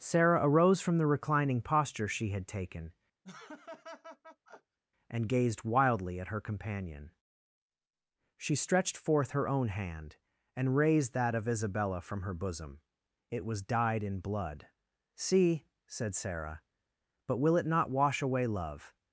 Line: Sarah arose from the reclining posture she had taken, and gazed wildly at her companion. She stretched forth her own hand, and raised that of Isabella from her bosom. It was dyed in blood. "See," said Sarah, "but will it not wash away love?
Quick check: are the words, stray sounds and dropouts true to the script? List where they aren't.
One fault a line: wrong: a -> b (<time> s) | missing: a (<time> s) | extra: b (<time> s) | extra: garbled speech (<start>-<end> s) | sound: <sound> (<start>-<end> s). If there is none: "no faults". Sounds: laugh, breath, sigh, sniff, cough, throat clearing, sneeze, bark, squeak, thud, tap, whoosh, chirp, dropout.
sound: laugh (3.2-4.8 s)